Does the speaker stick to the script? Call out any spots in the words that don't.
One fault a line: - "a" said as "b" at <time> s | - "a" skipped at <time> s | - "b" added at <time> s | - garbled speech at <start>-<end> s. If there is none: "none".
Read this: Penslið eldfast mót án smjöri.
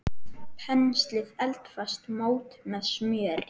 - "án" said as "með" at 2.7 s